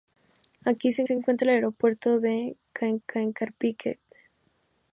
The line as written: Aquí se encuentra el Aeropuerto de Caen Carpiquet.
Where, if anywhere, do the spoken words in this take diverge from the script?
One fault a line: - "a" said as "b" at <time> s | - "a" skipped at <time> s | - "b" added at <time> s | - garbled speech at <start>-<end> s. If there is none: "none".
- "se" added at 1.0 s
- "Caen" added at 3.1 s